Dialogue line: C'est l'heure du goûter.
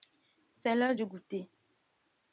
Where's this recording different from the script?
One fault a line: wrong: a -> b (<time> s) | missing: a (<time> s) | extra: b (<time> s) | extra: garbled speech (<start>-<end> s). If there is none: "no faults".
no faults